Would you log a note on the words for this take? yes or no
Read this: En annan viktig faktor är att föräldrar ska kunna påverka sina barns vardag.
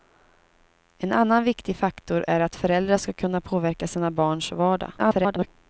yes